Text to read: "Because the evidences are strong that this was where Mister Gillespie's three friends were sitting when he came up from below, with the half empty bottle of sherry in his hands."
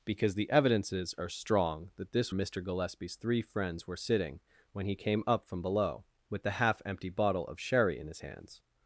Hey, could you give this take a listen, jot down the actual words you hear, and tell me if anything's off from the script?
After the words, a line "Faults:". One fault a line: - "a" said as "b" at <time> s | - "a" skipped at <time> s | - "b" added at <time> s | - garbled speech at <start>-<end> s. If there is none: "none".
"Because the evidences are strong that this Mister Gillespie's three friends were sitting when he came up from below, with the half empty bottle of sherry in his hands."
Faults:
- "was where" skipped at 2.3 s